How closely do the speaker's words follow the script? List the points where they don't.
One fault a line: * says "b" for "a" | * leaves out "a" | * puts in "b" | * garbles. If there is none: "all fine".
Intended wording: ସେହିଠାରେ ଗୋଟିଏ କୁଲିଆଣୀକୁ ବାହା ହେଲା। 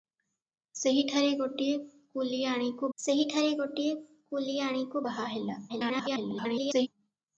* puts in "ସେହିଠାରେ ଗୋଟିଏ କୁଲିଆଣୀକୁ"
* garbles